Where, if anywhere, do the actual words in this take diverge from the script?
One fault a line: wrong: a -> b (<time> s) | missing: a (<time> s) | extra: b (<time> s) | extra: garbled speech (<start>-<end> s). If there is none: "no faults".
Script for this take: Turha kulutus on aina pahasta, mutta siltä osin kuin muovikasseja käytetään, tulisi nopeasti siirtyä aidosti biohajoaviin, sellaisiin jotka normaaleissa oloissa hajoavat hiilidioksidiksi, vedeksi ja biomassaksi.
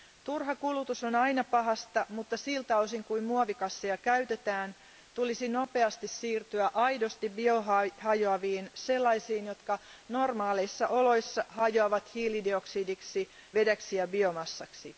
no faults